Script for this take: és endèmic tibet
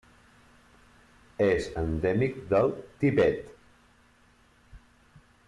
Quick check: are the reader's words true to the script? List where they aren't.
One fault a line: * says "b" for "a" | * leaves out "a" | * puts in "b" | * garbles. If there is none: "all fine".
* puts in "del"